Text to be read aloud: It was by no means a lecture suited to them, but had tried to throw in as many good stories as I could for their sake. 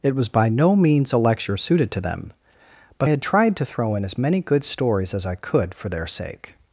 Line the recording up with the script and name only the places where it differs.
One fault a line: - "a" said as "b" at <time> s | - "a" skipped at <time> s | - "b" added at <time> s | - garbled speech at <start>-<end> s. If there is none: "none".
none